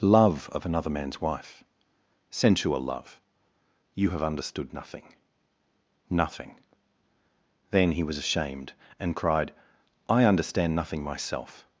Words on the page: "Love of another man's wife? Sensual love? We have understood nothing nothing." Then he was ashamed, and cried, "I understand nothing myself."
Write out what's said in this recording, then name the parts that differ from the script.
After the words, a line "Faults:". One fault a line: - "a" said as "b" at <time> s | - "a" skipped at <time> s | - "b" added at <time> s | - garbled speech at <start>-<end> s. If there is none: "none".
"Love of another man's wife? Sensual love? You have understood nothing nothing." Then he was ashamed, and cried, "I understand nothing myself."
Faults:
- "We" said as "You" at 3.9 s